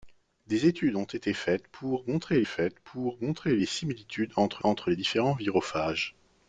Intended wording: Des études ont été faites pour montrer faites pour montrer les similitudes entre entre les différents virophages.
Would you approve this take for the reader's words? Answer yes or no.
yes